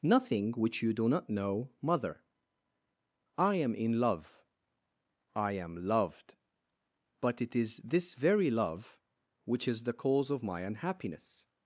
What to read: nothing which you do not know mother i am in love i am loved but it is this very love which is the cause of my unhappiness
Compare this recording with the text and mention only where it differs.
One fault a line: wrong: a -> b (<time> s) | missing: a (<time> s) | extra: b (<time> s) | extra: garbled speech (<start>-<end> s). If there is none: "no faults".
no faults